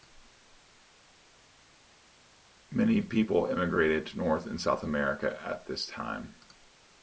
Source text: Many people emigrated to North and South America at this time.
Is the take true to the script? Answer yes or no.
yes